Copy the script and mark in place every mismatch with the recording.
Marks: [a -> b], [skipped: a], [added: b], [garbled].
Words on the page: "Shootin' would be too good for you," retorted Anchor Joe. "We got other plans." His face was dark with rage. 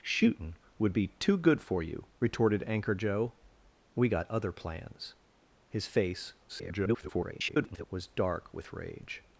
"Shootin' would be too good for you," retorted Anchor Joe. "We got other plans." His face [garbled] was dark with rage.